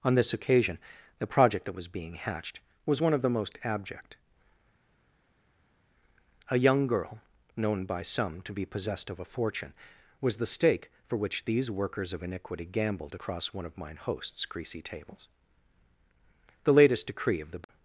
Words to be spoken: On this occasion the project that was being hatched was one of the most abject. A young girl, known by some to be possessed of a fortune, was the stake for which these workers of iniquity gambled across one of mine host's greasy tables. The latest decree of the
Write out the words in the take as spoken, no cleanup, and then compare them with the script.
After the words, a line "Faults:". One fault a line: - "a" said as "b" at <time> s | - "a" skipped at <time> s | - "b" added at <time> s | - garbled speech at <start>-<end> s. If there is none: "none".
On this occasion the project that was being hatched was one of the most abject. A young girl, known by some to be possessed of a fortune, was the stake for which these workers of iniquity gambled across one of mine host's greasy tables. The latest decree of the
Faults:
none